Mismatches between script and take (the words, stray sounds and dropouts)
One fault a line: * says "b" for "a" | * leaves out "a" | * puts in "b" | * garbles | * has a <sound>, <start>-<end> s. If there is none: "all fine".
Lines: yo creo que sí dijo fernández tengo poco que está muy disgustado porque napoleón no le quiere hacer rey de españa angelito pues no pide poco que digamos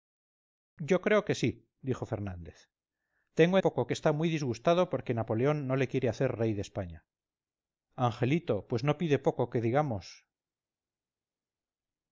all fine